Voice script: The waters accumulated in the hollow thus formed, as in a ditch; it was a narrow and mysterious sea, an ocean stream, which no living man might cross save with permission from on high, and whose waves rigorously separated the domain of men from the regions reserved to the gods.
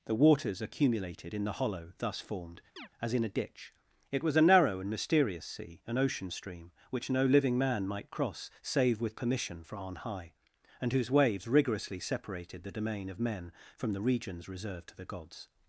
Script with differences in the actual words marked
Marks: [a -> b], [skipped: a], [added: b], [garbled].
The waters accumulated in the hollow thus formed, as in a ditch; it was a narrow and mysterious sea, an ocean stream, which no living man might cross save with permission from on high, and whose waves rigorously separated the domain of men from the regions reserved to the gods.